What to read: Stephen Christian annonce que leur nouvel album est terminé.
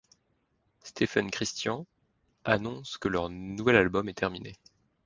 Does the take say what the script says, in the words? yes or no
yes